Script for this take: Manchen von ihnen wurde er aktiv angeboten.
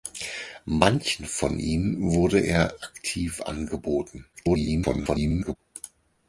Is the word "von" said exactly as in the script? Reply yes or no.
yes